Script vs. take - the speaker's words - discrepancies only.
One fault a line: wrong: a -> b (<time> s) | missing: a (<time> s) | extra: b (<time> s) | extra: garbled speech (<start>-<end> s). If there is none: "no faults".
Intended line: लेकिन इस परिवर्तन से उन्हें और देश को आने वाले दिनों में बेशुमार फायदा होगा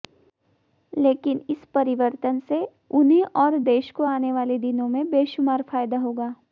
no faults